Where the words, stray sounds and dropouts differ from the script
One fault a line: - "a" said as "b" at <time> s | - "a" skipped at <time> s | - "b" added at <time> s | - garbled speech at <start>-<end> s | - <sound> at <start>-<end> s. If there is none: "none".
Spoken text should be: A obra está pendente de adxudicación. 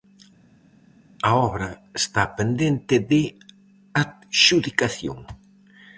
none